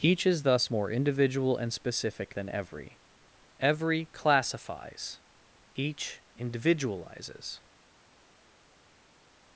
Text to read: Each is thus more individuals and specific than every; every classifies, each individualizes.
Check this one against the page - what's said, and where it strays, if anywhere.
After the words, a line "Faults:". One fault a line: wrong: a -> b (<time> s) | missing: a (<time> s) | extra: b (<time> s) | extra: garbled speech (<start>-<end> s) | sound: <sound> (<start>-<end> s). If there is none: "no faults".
Each is thus more individual and specific than every; every classifies, each individualizes.
Faults:
wrong: individuals -> individual (0.9 s)